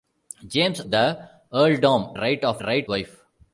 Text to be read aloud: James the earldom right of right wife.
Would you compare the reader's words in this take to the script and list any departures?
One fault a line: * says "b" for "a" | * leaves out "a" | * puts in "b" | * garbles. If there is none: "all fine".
all fine